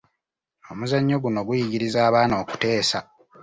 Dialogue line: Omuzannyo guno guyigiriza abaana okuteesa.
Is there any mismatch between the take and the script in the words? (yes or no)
no